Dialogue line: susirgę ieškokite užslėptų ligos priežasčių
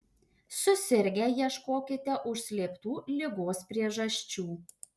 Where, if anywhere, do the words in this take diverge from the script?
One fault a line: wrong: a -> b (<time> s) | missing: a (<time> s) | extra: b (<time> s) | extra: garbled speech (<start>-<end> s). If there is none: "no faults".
no faults